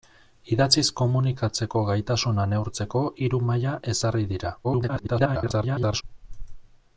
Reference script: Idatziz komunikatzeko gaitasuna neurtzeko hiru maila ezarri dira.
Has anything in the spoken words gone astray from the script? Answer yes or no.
yes